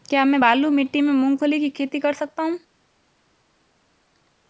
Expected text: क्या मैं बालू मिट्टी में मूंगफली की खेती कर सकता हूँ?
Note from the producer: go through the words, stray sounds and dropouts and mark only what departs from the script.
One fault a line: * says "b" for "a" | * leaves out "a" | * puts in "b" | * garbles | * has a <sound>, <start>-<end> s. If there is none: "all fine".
all fine